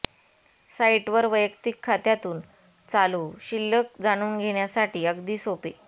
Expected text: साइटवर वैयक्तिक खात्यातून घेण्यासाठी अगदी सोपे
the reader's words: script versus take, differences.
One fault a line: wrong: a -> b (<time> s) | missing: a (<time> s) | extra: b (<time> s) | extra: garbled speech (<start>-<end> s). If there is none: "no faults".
extra: चालू शिल्लक जाणून (2.9 s)